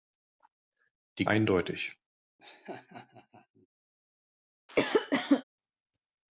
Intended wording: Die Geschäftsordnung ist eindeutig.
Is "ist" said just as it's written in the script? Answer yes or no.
no